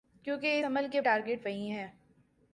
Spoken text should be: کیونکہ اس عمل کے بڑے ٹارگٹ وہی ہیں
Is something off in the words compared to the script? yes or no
yes